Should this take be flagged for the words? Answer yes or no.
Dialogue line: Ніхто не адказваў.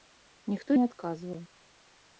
no